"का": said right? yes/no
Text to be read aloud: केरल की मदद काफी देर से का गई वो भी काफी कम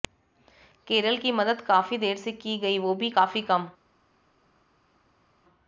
no